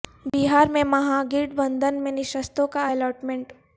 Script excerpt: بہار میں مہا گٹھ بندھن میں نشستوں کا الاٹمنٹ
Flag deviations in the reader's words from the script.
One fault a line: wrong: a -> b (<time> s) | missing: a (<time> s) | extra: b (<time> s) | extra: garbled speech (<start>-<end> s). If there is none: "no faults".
no faults